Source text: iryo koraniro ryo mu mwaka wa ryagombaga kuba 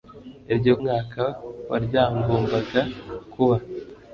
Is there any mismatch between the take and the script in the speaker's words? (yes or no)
yes